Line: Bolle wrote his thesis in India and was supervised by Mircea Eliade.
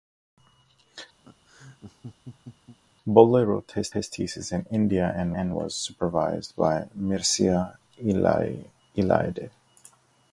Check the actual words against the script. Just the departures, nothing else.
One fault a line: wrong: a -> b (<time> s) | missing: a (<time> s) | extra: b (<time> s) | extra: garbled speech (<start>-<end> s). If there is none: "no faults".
extra: his (3.9 s)
extra: and (5.4 s)